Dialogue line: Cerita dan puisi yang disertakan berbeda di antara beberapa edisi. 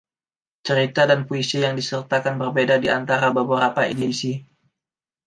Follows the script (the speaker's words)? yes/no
yes